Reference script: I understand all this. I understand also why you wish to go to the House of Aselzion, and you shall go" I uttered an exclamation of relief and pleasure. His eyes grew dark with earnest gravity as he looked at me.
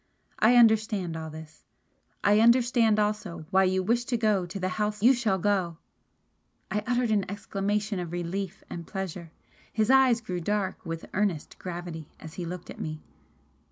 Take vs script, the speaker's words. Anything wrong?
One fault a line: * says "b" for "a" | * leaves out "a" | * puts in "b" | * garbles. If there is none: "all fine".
* leaves out "of Aselzion and"